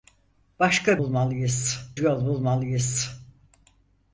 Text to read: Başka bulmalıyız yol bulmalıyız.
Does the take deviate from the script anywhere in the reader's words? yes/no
no